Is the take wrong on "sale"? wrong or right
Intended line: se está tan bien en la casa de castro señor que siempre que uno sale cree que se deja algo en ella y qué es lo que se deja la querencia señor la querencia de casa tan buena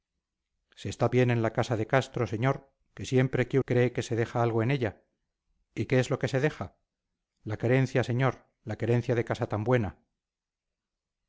wrong